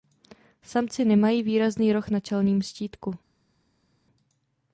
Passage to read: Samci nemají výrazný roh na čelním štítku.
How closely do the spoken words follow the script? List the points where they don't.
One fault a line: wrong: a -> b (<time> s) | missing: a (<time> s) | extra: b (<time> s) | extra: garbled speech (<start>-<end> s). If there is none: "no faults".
no faults